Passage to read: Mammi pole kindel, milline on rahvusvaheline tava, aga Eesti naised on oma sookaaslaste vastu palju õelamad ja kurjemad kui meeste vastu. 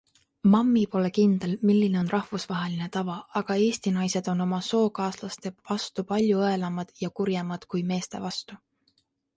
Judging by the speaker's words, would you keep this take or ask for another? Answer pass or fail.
pass